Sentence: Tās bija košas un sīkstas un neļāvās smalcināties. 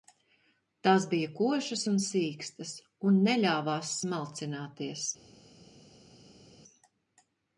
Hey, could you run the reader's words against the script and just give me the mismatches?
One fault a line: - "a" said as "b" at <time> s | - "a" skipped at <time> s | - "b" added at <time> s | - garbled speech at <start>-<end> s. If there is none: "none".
none